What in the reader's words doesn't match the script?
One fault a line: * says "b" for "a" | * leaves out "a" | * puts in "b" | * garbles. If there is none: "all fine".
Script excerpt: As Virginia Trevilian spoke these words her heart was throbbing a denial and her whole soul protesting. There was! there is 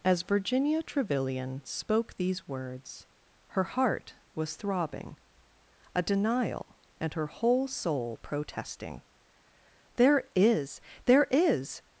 * says "is" for "was"